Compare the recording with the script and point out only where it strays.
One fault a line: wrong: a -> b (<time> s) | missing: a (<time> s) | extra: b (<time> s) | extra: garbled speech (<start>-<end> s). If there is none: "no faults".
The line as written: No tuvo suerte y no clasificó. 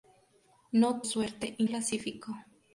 missing: tuvo (1.0 s)
missing: no (1.6 s)